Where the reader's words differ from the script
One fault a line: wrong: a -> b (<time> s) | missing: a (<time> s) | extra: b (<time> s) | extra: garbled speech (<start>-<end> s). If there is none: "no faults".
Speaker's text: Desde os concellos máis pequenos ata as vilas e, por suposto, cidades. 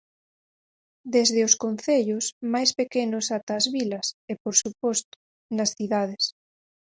extra: nas (5.6 s)